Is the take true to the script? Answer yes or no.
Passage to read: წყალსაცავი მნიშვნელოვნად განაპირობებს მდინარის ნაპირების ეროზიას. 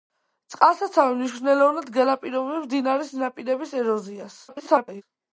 no